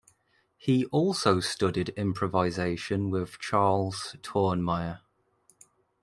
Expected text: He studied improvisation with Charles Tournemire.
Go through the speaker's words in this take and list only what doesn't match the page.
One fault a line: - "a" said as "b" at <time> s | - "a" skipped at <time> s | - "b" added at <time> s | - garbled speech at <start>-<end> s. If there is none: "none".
- "also" added at 0.8 s